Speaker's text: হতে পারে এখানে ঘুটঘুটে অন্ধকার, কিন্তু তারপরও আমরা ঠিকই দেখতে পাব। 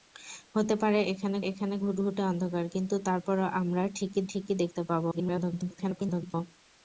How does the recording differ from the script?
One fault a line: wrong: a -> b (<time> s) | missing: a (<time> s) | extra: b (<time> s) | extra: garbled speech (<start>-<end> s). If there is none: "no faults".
extra: এখানে (1.5 s)
extra: ঠিকই (4.3 s)
extra: garbled speech (5.1-6.3 s)